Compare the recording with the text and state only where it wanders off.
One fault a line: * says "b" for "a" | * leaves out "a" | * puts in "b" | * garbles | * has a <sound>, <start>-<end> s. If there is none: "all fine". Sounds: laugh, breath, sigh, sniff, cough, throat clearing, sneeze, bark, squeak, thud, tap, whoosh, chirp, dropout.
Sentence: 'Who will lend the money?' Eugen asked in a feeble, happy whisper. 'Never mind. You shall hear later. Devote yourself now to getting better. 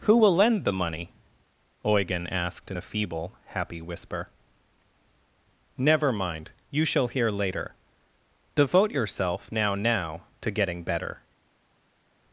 * puts in "now"